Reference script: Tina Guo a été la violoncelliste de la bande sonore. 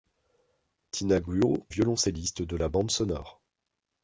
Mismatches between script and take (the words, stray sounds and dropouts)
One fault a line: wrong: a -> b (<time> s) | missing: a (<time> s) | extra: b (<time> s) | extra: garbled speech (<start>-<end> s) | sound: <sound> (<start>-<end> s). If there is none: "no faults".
missing: a été la (1.6 s)